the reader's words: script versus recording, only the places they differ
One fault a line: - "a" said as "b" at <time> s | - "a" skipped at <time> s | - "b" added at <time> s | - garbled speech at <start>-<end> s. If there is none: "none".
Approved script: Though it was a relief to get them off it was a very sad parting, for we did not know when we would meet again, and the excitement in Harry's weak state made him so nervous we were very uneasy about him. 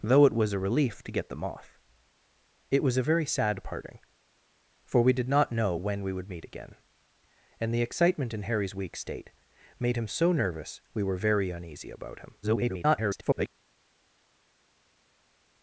- garbled speech at 12.4-13.5 s